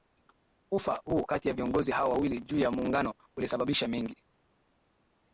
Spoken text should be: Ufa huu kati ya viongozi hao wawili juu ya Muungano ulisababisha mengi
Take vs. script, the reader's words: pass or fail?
pass